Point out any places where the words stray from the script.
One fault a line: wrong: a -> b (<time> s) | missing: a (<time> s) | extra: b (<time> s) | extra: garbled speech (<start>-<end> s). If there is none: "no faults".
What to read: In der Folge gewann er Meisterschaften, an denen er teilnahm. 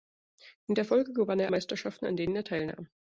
no faults